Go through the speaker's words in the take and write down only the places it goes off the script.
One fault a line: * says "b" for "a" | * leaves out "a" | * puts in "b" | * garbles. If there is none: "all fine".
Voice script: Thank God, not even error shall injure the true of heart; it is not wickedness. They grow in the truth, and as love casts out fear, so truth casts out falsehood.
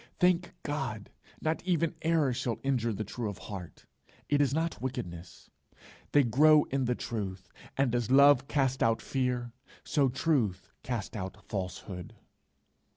all fine